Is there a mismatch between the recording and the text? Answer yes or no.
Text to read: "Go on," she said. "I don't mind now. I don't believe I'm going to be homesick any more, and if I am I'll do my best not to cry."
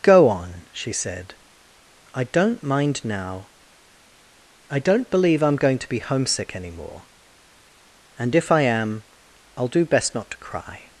yes